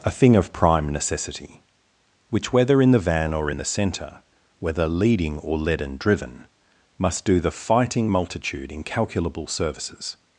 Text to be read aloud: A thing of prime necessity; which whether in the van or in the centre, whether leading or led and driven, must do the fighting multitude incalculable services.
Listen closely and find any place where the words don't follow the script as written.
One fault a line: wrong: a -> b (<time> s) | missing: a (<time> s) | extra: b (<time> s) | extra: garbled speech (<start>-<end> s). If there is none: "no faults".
no faults